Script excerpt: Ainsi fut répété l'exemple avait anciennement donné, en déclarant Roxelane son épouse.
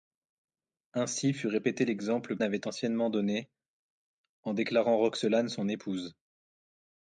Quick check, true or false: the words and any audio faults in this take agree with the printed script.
true